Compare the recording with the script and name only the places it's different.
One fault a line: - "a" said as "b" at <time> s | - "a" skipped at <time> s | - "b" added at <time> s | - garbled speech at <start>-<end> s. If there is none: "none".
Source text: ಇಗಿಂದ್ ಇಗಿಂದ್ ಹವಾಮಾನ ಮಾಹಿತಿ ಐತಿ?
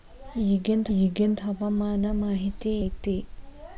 none